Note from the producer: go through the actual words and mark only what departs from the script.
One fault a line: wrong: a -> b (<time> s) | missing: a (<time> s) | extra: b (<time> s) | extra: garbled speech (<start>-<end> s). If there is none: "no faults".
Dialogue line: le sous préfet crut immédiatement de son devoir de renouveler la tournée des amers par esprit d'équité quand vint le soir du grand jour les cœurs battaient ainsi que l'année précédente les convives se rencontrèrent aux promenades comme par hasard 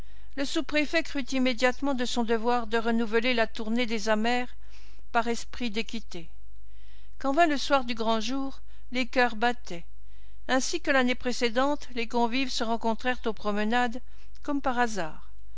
no faults